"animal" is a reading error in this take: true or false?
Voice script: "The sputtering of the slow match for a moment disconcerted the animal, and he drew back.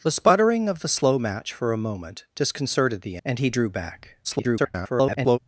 true